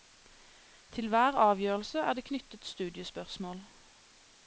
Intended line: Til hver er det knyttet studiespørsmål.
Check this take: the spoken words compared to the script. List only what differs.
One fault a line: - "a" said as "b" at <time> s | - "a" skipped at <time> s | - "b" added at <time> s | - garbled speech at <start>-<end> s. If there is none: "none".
- "avgjørelse" added at 1.4 s